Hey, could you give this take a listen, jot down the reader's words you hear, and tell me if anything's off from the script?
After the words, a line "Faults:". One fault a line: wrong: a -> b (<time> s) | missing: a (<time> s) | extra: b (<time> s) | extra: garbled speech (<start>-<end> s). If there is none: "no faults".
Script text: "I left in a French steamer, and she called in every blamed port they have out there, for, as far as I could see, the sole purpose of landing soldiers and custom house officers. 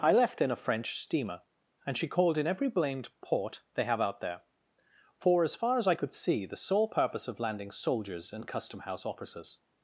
"I left in a French steamer, and she called in every blamed port they have out there, for, as far as I could see, the sole purpose of landing soldiers and custom house officers.
Faults:
no faults